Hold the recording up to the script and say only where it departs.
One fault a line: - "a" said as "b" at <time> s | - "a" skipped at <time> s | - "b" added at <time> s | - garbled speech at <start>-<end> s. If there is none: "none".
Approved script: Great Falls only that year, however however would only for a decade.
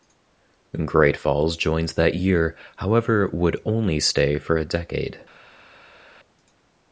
- "only" said as "joined" at 1.6 s
- "however" skipped at 3.3 s
- "stay" added at 4.0 s